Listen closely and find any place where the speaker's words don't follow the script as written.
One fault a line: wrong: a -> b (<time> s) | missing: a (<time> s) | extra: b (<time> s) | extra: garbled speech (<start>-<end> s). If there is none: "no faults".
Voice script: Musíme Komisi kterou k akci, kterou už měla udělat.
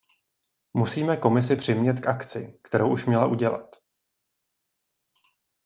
wrong: kterou -> přimět (1.5 s)